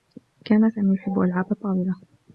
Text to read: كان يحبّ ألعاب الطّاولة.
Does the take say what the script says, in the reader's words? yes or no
no